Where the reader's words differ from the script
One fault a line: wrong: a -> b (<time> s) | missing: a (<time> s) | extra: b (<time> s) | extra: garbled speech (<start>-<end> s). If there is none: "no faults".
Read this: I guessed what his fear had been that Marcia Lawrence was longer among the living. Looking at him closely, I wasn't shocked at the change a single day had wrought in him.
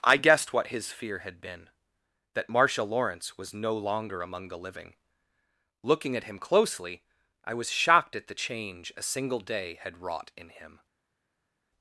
extra: no (3.5 s)
wrong: wasn't -> was (7.5 s)